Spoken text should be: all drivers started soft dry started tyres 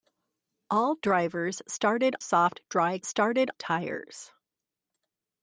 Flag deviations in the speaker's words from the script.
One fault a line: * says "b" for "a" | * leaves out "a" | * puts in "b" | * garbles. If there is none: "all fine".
all fine